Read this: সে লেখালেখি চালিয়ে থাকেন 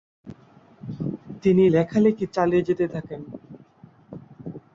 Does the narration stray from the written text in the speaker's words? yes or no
yes